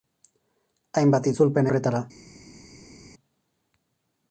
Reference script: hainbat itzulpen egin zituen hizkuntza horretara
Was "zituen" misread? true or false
true